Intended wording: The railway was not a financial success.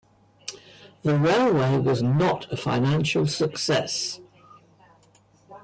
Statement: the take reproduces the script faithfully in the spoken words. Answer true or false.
true